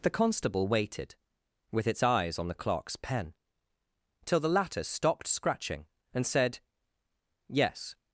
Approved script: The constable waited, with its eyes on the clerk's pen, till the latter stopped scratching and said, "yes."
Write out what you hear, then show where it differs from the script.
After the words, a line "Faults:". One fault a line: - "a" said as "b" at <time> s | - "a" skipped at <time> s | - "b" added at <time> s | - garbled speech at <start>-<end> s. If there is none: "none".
The constable waited, with its eyes on the clerk's pen, till the latter stopped scratching and said, "yes."
Faults:
none